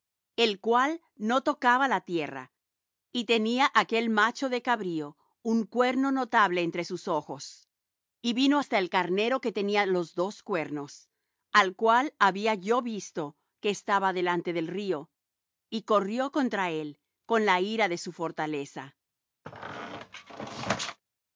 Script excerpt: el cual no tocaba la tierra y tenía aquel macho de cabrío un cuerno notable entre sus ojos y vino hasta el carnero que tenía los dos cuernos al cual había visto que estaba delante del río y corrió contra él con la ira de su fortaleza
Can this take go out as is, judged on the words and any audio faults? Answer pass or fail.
fail